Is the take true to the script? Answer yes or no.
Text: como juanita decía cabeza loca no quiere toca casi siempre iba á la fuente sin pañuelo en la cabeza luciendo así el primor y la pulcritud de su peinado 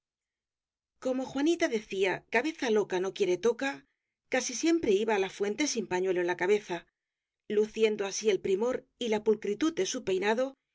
yes